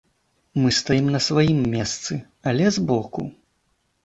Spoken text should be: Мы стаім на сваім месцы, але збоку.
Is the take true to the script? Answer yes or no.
yes